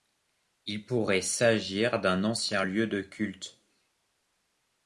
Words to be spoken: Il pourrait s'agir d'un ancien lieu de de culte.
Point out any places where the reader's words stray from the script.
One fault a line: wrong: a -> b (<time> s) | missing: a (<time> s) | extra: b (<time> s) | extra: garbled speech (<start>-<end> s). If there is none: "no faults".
missing: de (3.0 s)